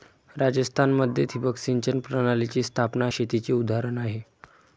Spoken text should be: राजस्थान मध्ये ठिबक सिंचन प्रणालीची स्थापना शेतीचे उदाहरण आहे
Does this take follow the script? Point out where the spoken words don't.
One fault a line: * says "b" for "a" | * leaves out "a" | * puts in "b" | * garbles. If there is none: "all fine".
all fine